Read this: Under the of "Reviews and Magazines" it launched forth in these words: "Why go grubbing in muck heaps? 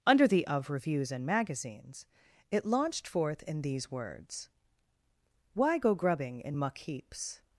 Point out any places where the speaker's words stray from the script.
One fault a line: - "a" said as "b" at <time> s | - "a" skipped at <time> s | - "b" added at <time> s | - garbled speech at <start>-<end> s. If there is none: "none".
none